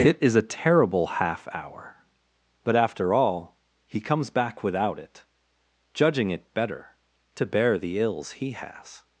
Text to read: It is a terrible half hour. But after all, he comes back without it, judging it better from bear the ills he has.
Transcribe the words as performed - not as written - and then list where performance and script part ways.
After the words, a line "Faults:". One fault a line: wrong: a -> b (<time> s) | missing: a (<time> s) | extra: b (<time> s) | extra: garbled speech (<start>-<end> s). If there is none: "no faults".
It is a terrible half hour. But after all, he comes back without it, judging it better to bear the ills he has.
Faults:
wrong: from -> to (7.3 s)